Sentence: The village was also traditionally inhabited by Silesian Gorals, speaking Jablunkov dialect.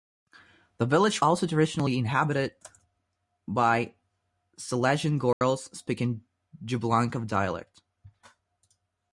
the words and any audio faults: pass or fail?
fail